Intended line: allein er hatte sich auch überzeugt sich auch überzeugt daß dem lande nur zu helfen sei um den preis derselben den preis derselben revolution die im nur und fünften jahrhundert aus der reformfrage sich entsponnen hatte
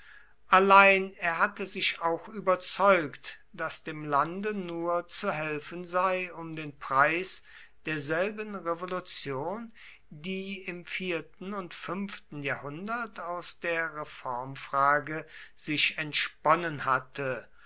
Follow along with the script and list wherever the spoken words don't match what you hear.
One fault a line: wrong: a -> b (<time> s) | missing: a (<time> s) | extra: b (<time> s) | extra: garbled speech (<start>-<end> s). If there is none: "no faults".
missing: sich auch überzeugt (3.4 s)
missing: den preis derselben (8.6 s)
wrong: nur -> vierten (10.9 s)